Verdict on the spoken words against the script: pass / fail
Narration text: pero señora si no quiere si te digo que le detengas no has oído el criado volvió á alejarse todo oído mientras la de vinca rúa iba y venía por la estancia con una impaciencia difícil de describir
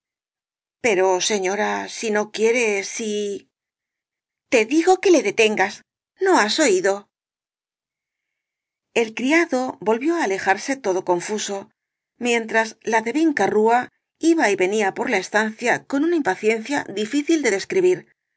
fail